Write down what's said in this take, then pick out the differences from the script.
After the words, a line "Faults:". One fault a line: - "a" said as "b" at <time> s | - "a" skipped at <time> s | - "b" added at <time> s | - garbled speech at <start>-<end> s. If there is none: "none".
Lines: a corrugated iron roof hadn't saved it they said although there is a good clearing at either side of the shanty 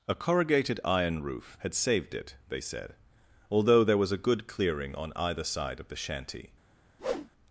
a corrugated iron roof had saved it they said although there was a good clearing on either side of the shanty
Faults:
- "hadn't" said as "had" at 1.6 s
- "is" said as "was" at 4.0 s
- "at" said as "on" at 4.9 s